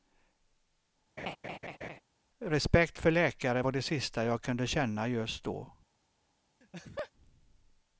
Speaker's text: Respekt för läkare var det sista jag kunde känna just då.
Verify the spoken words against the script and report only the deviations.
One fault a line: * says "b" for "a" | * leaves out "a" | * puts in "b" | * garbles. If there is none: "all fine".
all fine